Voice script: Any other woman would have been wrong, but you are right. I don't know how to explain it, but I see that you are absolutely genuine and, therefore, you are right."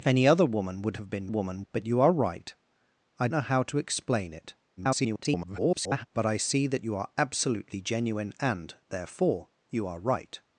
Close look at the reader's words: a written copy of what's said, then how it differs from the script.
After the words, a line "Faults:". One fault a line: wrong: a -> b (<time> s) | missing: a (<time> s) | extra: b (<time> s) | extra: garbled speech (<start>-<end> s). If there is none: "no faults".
Any other woman would have been woman, but you are right. I know how to explain it, [garbled] but I see that you are absolutely genuine and, therefore, you are right."
Faults:
wrong: wrong -> woman (1.3 s)
missing: don't (3.3 s)
extra: garbled speech (4.8-6.1 s)